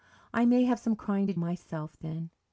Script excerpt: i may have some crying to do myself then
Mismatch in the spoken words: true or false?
true